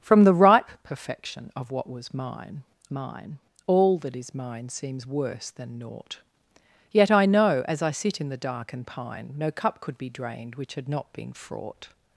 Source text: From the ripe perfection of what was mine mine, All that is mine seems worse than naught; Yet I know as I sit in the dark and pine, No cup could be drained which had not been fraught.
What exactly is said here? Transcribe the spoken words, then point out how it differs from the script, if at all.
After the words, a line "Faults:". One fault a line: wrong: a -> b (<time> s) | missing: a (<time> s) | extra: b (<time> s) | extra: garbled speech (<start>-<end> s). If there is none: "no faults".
From the ripe perfection of what was mine mine, All that is mine seems worse than naught; Yet I know as I sit in the dark and pine, No cup could be drained which had not been fraught.
Faults:
no faults